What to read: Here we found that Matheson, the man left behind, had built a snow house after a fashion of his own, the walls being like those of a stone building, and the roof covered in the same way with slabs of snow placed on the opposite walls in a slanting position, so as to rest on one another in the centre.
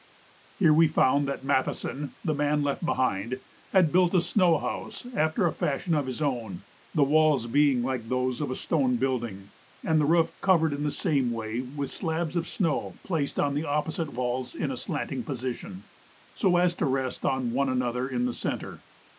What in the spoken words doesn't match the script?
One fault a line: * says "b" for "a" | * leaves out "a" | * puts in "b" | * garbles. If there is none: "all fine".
all fine